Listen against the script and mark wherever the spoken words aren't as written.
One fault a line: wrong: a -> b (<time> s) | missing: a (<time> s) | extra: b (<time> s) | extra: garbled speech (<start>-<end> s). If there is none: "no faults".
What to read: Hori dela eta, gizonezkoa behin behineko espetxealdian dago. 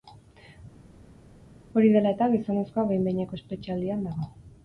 no faults